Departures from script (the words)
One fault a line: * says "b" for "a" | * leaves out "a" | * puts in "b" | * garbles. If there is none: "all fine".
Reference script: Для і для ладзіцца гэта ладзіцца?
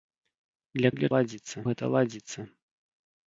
all fine